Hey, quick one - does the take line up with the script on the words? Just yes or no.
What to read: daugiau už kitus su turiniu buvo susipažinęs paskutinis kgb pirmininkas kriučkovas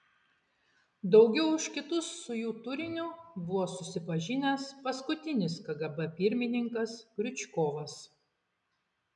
no